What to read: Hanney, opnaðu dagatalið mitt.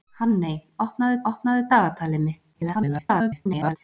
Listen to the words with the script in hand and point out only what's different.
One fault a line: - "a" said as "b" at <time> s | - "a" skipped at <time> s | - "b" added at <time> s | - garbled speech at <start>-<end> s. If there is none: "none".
- "opnaðu" added at 1.3 s
- garbled speech at 2.5-3.8 s